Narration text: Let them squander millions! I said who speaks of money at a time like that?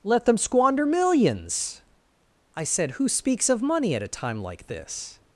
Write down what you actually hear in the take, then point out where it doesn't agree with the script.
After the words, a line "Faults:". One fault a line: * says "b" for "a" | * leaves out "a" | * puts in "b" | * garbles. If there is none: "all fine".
Let them squander millions! I said who speaks of money at a time like this?
Faults:
* says "this" for "that"